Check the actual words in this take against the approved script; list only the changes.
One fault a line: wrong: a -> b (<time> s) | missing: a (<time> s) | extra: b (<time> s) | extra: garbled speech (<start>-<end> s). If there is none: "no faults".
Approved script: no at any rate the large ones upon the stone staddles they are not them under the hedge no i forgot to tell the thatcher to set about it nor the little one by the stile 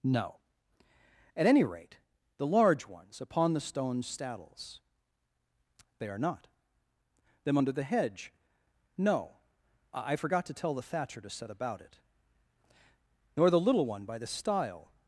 no faults